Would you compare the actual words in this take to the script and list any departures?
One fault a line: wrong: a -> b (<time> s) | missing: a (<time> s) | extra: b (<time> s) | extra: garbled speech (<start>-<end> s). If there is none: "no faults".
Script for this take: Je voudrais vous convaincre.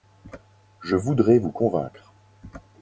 no faults